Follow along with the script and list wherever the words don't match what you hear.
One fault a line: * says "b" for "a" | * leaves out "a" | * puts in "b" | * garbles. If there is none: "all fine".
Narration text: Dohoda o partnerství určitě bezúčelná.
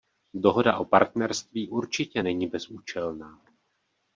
* puts in "není"